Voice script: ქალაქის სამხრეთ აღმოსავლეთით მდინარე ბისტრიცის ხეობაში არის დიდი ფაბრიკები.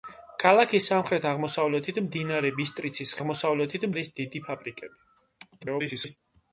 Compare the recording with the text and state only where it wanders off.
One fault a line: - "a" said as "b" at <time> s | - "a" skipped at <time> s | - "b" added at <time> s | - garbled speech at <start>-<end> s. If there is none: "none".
- "ხეობაში" said as "აღმოსავლეთით" at 3.2 s
- garbled speech at 5.6-6.2 s